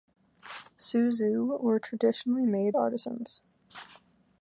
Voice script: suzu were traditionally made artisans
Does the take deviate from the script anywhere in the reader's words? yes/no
no